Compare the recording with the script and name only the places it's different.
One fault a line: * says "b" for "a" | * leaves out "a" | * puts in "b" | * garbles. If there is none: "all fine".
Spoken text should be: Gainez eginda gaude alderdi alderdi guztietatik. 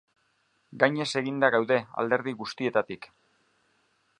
* leaves out "alderdi"